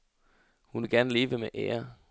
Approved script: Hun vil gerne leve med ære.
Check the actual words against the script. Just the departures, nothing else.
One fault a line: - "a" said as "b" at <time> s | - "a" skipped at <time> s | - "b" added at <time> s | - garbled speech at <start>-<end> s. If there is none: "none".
none